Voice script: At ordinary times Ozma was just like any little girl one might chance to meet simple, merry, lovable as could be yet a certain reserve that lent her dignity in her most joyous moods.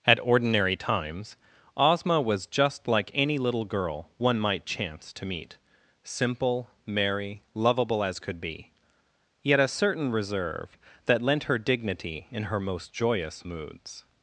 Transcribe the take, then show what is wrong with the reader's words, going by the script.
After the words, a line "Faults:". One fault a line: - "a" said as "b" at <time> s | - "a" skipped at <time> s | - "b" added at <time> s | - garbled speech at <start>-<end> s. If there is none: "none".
At ordinary times Ozma was just like any little girl one might chance to meet simple, merry, lovable as could be yet a certain reserve that lent her dignity in her most joyous moods.
Faults:
none